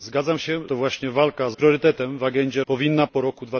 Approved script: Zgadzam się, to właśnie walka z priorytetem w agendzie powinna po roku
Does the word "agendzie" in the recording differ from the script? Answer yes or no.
no